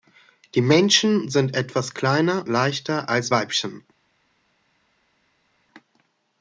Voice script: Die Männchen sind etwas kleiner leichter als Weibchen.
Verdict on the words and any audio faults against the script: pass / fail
pass